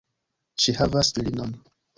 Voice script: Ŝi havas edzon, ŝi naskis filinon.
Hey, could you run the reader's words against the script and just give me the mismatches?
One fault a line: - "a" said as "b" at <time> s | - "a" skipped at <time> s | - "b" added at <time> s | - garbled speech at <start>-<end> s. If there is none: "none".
- "edzon ŝi naskis" skipped at 1.1 s